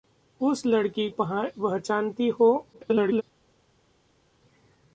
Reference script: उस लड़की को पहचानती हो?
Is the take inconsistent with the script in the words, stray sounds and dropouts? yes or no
yes